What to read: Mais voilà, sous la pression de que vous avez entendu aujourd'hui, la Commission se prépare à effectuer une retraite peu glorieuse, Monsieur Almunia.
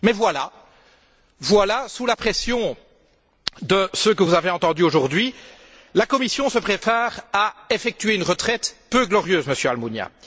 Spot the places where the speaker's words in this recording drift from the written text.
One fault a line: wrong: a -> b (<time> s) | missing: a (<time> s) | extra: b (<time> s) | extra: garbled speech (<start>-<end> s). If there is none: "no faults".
extra: ce (3.9 s)